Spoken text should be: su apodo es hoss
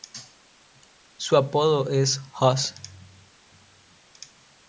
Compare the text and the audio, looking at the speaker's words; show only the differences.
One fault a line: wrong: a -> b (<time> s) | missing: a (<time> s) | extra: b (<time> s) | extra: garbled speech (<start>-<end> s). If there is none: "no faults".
no faults